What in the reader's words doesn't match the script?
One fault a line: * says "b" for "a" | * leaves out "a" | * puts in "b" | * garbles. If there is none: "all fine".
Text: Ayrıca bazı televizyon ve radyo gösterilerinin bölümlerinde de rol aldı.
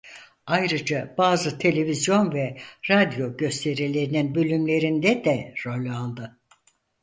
all fine